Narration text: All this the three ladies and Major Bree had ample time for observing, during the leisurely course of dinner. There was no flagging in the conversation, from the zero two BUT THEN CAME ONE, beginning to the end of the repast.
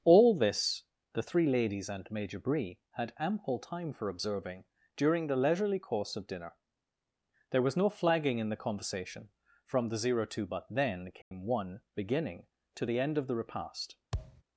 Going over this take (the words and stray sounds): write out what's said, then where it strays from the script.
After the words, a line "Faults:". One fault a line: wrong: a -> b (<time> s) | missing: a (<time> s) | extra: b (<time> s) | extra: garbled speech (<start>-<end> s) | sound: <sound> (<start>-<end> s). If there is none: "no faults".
All this the three ladies and Major Bree had ample time for observing, during the leisurely course of dinner. There was no flagging in the conversation, from the zero two BUT THEN CAME ONE, beginning to the end of the repast.
Faults:
sound: dropout (11.2-11.3 s)
sound: thud (14.1-14.4 s)